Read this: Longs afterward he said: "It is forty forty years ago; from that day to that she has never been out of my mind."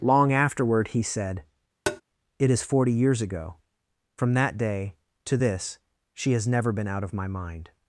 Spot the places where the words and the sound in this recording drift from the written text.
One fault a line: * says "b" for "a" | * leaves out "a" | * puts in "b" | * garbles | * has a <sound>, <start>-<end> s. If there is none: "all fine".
* says "Long" for "Longs"
* has a tap, 1.9-2.0 s
* leaves out "forty"
* says "this" for "that"